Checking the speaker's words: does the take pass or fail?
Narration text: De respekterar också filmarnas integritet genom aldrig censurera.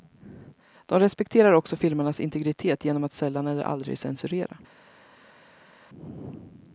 fail